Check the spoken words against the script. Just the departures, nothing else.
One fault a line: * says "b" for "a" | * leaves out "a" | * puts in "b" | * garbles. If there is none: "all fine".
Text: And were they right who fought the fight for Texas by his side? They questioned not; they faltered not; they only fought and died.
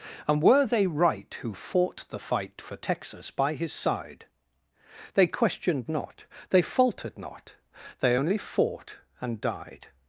all fine